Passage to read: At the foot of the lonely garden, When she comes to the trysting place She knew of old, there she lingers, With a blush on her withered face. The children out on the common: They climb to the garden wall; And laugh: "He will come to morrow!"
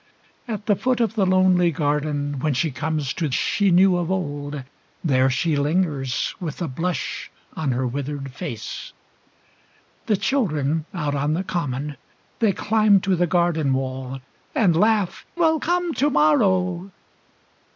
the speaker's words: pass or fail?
fail